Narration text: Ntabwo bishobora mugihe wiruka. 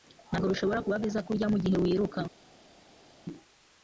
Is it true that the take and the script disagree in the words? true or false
true